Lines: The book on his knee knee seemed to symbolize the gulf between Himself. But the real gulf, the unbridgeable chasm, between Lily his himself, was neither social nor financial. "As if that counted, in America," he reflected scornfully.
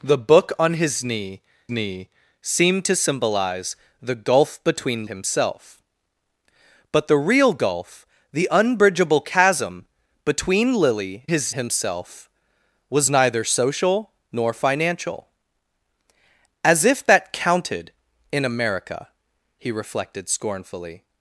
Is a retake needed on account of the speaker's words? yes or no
no